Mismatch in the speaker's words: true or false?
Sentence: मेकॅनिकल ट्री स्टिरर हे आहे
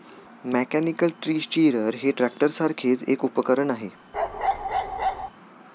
true